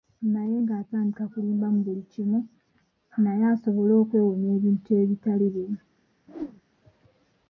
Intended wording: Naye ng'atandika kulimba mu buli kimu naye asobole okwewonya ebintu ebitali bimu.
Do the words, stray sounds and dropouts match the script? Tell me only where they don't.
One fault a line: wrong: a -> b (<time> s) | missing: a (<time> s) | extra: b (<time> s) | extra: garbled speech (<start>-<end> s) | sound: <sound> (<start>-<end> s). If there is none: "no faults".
sound: whoosh (6.3-6.6 s)